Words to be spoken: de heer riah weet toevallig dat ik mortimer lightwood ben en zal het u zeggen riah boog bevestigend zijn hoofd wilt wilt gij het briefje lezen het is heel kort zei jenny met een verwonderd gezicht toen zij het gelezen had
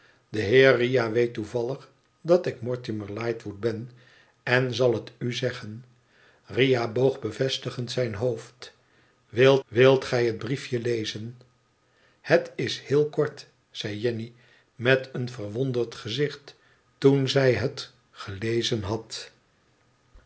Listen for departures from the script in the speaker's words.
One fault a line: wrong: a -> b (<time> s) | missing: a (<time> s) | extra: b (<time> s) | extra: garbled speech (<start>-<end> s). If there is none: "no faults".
no faults